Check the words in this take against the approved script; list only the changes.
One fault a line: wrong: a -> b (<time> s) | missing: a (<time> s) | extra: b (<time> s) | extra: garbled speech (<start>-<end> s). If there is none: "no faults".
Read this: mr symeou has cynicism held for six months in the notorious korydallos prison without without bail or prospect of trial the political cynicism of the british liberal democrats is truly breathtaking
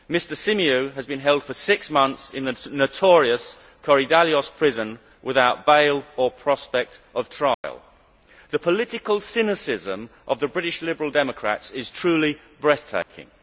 wrong: cynicism -> been (1.1 s)
missing: without (5.7 s)